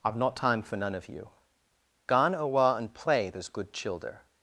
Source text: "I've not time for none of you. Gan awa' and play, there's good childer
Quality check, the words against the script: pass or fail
pass